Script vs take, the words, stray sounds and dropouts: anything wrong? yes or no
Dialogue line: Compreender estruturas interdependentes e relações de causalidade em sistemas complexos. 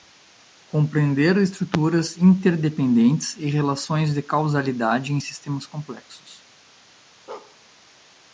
yes